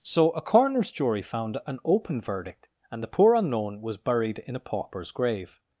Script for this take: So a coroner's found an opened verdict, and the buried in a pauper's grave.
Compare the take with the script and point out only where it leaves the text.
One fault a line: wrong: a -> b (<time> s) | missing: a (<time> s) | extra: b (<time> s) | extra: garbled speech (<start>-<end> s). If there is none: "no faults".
extra: jury (0.9 s)
wrong: opened -> open (1.9 s)
extra: poor unknown was (3.1 s)